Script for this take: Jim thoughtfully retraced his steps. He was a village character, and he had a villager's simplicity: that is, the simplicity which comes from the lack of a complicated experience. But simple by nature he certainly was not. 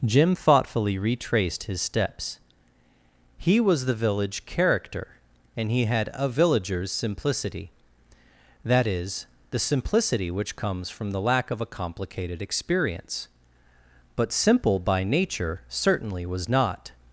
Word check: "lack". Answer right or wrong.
right